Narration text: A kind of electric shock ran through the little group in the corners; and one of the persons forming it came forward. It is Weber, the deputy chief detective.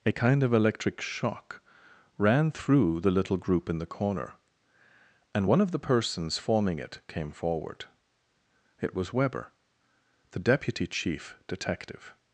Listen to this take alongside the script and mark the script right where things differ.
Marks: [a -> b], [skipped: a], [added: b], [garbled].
A kind of electric shock ran through the little group in the [corners; -> corner] and one of the persons forming it came forward. It [is -> was] Weber, the deputy chief detective.